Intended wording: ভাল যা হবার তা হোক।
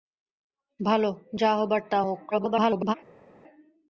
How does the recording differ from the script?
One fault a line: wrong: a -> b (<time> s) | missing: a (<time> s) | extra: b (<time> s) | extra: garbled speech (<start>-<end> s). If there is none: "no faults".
extra: garbled speech (2.3-2.9 s)